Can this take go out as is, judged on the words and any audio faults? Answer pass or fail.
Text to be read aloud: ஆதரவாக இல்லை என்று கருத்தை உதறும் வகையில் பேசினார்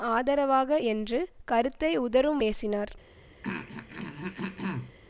fail